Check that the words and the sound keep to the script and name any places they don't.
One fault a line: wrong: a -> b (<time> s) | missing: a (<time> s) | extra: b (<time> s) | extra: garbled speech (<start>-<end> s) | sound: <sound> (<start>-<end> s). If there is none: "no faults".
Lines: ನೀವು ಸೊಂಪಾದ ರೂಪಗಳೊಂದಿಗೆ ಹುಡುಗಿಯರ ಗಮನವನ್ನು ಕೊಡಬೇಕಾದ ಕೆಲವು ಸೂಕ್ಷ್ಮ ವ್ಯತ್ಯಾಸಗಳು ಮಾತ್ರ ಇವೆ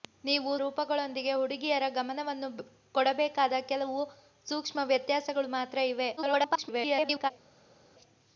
missing: ಸೊಂಪಾದ (0.5 s)
extra: garbled speech (6.2-7.3 s)